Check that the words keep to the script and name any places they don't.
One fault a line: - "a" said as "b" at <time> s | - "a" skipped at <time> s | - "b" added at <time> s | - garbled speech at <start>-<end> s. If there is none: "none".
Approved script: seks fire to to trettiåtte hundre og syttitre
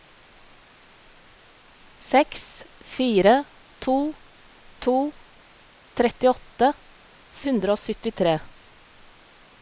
none